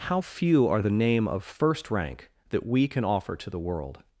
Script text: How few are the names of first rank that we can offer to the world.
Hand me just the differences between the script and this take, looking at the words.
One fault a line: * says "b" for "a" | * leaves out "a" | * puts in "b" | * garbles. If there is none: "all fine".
* says "name" for "names"